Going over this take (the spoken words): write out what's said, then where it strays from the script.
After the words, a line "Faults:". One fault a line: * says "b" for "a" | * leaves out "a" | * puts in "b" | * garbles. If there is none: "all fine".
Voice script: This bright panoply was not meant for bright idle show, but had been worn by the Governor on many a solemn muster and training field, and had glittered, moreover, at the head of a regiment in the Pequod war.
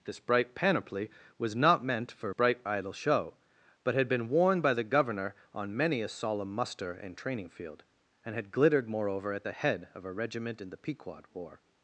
This bright panoply was not meant for bright idle show, but had been worn by the Governor on many a solemn muster and training field, and had glittered, moreover, at the head of a regiment in the Pequod war.
Faults:
all fine